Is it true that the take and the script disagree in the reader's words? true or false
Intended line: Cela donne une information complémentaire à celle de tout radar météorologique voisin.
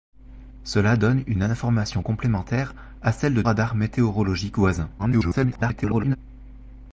true